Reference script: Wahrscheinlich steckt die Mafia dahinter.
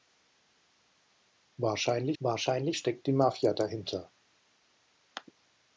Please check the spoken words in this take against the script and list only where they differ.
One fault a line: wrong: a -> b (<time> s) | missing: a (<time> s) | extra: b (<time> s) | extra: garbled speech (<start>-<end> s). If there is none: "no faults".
extra: wahrscheinlich (2.2 s)